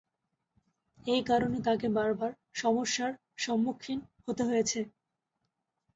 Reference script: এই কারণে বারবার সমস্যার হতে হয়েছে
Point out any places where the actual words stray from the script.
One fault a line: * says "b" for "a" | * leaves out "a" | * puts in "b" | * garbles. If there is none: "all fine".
* puts in "তাকে"
* puts in "সম্মুখীন"